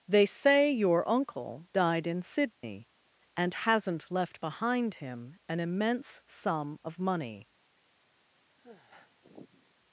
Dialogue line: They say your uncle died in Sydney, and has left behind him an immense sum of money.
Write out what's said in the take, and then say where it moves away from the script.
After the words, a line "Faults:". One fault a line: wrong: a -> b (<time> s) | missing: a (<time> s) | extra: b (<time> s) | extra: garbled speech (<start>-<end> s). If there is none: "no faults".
They say your uncle died in Sydney, and hasn't left behind him an immense sum of money.
Faults:
wrong: has -> hasn't (3.5 s)